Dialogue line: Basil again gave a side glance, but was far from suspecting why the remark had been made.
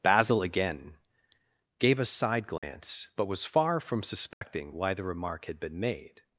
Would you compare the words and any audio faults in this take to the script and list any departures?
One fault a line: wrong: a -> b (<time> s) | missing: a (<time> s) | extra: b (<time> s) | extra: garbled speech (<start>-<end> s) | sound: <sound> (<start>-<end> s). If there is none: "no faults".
sound: dropout (2.6-2.6 s)
sound: dropout (4.3-4.4 s)